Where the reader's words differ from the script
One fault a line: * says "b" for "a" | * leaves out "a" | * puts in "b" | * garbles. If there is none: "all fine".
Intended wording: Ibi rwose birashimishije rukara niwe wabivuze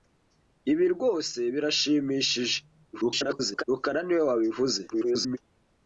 * garbles
* garbles